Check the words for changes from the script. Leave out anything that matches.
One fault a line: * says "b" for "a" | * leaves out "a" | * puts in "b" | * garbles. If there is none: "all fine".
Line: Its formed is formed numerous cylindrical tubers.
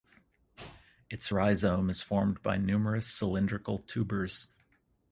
* says "rhizome" for "formed"
* puts in "by"